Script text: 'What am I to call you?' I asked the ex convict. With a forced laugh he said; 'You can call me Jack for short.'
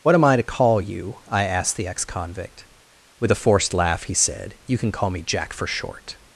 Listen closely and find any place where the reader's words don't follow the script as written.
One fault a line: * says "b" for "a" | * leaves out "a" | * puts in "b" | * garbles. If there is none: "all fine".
all fine